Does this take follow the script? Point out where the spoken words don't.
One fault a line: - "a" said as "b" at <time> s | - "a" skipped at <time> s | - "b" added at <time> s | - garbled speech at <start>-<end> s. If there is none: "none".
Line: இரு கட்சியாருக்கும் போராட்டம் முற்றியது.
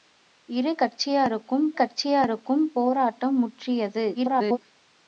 - "கட்சியாருக்கும்" added at 1.7 s
- garbled speech at 4.1-4.6 s